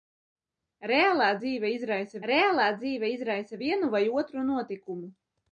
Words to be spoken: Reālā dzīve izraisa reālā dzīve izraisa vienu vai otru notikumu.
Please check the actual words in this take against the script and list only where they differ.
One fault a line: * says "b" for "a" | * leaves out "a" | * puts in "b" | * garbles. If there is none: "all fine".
all fine